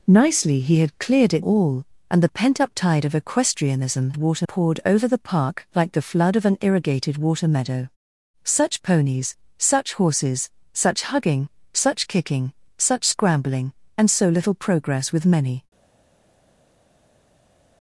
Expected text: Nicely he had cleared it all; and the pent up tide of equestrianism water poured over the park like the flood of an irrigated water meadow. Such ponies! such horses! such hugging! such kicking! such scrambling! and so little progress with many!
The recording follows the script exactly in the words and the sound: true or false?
true